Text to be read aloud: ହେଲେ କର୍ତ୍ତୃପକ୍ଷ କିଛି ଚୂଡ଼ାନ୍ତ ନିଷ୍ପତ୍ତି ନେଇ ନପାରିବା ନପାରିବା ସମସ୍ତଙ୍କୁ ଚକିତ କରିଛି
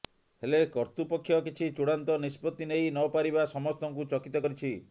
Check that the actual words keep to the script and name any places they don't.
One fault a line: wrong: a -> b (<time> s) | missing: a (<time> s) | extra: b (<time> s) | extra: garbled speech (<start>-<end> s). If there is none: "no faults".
missing: ନପାରିବା (3.4 s)